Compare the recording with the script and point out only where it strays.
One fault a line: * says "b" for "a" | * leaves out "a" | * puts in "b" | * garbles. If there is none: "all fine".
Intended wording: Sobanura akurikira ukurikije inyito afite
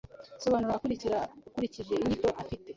all fine